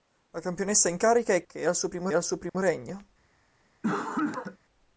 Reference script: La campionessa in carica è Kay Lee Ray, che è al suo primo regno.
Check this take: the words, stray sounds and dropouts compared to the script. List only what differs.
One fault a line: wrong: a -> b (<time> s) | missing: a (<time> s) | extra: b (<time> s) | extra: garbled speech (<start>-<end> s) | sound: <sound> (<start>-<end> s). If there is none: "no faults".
wrong: Kay Lee Ray che è -> Che è al suo primo (1.5 s)
sound: dropout (2.5-2.5 s)
sound: cough (3.8-4.6 s)